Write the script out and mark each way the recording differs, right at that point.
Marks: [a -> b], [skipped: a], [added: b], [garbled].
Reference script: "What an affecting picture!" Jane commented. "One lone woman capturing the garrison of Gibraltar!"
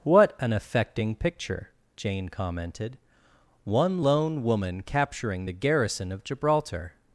"What an affecting picture!" Jane commented. "One lone woman capturing the garrison of Gibraltar!"